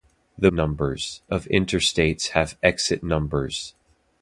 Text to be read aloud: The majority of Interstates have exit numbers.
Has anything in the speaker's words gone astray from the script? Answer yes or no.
yes